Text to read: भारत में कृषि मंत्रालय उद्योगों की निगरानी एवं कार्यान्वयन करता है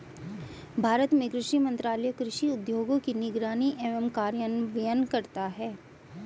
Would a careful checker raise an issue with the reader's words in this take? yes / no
yes